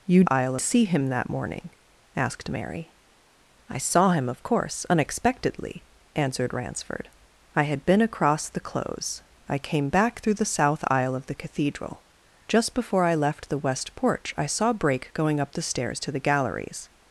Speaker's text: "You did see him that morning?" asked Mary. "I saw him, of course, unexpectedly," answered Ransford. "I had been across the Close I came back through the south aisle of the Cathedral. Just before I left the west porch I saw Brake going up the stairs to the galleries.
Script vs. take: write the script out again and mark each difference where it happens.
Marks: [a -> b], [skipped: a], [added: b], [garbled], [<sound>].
"You [did -> aisle] see him that morning?" asked Mary. "I saw him, of course, unexpectedly," answered Ransford. "I had been across the Close I came back through the south aisle of the Cathedral. Just before I left the west porch I saw Brake going up the stairs to the galleries.